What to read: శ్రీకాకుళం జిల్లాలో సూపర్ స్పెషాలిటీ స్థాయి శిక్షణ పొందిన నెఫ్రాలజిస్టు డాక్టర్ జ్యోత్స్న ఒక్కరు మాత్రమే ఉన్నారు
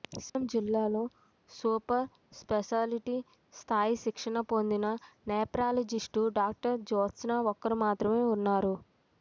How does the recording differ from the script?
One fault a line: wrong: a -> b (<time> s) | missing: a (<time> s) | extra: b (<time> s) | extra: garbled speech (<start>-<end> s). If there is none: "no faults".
no faults